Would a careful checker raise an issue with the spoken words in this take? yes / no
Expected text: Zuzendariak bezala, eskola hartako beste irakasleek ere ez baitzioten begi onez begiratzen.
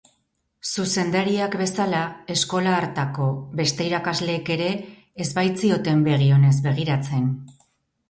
no